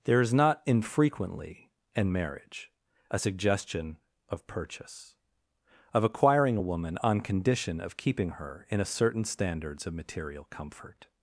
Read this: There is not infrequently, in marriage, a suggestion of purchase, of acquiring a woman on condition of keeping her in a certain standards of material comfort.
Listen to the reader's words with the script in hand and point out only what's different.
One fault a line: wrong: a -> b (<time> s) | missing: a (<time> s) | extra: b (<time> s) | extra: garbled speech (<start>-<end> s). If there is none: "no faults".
no faults